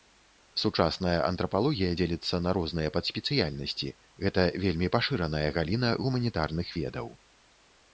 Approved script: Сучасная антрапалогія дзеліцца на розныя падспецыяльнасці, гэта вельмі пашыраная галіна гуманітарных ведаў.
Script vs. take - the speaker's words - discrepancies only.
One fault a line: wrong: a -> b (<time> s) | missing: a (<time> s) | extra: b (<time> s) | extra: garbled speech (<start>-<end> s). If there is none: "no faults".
no faults